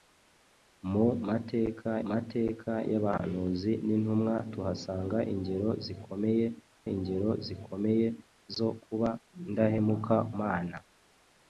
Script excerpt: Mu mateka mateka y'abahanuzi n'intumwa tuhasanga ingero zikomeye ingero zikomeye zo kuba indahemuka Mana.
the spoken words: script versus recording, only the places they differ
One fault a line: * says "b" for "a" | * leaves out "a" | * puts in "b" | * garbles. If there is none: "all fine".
all fine